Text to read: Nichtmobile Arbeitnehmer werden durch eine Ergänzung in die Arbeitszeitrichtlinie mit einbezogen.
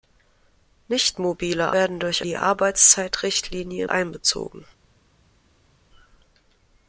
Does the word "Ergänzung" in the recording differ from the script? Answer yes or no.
yes